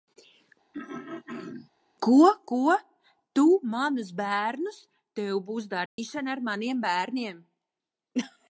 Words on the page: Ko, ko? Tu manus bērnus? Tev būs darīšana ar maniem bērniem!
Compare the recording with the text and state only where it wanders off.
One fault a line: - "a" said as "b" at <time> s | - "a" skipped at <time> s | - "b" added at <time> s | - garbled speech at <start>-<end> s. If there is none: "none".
none